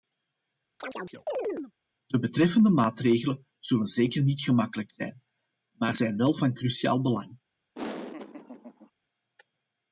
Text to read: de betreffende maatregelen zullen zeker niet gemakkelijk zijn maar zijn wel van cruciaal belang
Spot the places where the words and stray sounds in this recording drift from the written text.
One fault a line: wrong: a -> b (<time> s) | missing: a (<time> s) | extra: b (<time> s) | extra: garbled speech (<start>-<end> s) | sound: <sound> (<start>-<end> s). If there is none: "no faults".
sound: chirp (0.8-1.7 s)
sound: laugh (7.7-8.9 s)